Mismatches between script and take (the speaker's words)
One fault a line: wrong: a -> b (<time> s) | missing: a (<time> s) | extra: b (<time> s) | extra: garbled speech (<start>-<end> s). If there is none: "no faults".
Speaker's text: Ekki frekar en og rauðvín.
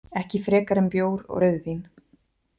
extra: bjór (0.9 s)